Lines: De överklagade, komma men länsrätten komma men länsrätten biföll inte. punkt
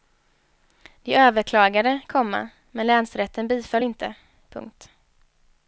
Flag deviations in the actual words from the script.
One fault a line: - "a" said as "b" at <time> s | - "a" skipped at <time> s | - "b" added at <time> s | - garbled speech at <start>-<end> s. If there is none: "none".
- "komma men länsrätten" skipped at 3.5 s